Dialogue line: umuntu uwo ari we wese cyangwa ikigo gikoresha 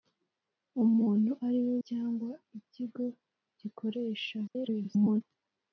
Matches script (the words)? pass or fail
fail